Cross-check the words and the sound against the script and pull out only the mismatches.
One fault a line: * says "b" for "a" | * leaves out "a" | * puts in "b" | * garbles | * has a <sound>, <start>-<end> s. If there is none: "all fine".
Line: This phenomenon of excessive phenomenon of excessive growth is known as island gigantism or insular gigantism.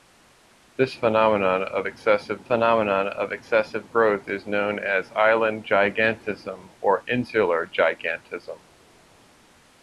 all fine